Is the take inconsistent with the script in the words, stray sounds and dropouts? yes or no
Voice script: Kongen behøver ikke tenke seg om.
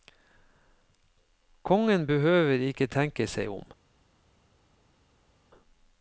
no